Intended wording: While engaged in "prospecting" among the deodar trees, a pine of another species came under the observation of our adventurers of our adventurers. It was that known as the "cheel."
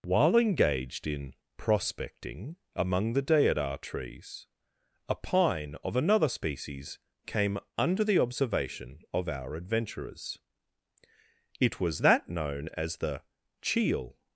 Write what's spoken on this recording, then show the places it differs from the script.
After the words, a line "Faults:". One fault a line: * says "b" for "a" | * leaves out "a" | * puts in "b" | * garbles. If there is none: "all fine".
While engaged in "prospecting" among the deodar trees, a pine of another species came under the observation of our adventurers. It was that known as the "cheel."
Faults:
* leaves out "of our adventurers"